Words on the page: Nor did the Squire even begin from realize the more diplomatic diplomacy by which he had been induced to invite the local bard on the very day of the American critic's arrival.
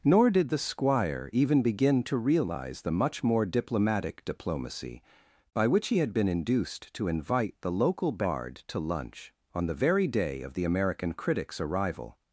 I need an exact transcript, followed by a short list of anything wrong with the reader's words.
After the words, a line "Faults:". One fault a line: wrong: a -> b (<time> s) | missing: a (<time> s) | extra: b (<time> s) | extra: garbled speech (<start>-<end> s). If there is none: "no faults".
Nor did the Squire even begin to realize the much more diplomatic diplomacy by which he had been induced to invite the local bard to lunch on the very day of the American critic's arrival.
Faults:
wrong: from -> to (2.0 s)
extra: much (2.9 s)
extra: to lunch (8.7 s)